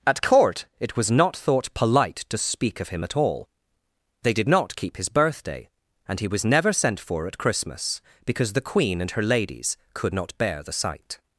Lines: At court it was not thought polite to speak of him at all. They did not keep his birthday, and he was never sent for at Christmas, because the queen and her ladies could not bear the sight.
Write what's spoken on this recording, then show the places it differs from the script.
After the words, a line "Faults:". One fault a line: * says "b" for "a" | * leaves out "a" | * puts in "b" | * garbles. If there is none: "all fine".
At court it was not thought polite to speak of him at all. They did not keep his birthday, and he was never sent for at Christmas, because the queen and her ladies could not bear the sight.
Faults:
all fine